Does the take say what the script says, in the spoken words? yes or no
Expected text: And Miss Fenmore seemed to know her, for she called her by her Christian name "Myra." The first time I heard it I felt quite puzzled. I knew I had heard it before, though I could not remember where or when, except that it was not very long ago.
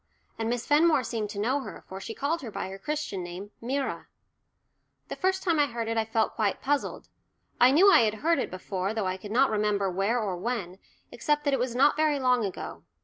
yes